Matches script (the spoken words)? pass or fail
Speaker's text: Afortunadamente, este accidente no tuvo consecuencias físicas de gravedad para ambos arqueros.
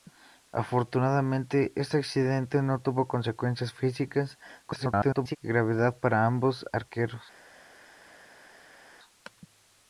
fail